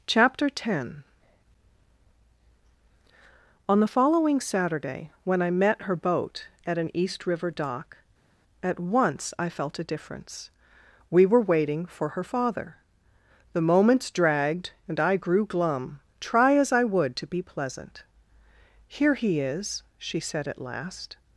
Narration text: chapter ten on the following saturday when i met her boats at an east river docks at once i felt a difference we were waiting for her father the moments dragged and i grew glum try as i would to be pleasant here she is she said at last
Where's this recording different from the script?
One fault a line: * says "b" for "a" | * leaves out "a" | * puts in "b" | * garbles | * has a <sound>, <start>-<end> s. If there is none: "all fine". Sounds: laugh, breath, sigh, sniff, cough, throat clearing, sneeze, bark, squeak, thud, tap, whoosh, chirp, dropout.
* says "boat" for "boats"
* says "dock" for "docks"
* says "he" for "she"